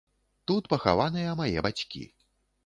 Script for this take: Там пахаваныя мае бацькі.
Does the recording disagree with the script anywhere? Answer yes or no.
yes